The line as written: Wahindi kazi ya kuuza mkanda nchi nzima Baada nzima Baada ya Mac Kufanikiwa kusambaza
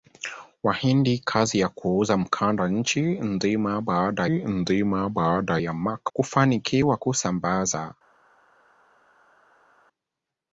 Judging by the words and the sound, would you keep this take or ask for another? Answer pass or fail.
pass